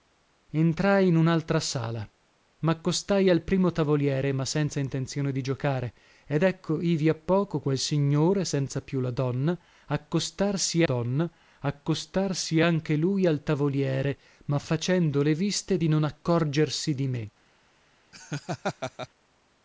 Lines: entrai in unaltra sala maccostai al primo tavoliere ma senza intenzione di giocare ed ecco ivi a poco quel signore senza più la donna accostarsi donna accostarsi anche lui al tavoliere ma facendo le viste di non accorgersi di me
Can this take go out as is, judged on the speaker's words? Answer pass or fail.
pass